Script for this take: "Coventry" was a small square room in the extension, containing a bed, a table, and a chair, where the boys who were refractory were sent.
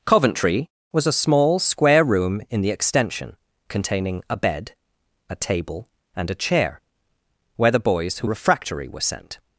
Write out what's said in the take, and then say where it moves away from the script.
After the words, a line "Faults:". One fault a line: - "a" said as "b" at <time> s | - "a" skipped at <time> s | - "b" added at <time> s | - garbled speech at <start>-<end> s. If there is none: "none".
"Coventry" was a small square room in the extension, containing a bed, a table, and a chair, where the boys who refractory were sent.
Faults:
- "were" skipped at 8.3 s